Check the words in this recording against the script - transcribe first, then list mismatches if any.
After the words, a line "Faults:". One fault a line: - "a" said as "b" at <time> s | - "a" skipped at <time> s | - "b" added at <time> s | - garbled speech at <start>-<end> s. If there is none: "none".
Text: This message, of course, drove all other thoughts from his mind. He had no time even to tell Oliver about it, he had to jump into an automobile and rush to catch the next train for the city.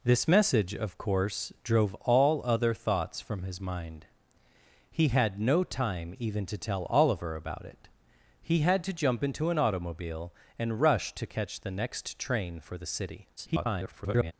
This message, of course, drove all other thoughts from his mind. He had no time even to tell Oliver about it, he had to jump into an automobile and rush to catch the next train for the city. [garbled]
Faults:
- garbled speech at 13.4-14.3 s